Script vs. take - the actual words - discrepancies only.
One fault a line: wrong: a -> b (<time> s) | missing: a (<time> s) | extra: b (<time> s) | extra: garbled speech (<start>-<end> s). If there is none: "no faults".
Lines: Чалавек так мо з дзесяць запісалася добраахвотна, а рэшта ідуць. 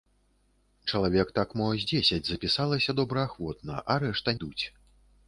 no faults